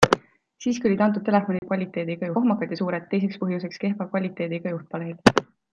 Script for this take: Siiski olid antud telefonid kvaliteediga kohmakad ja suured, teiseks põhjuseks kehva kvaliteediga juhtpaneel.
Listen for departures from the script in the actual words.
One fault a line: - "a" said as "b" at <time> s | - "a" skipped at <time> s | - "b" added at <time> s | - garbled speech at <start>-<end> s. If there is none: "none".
none